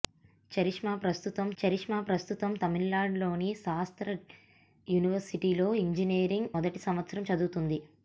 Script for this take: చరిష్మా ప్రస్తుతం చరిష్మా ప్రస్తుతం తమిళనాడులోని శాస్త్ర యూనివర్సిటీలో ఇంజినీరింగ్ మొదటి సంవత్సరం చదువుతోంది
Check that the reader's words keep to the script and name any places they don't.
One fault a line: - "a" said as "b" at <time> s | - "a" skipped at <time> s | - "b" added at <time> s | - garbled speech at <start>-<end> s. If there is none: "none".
none